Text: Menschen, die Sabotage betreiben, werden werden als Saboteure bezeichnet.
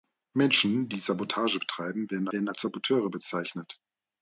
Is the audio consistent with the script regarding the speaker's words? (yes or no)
yes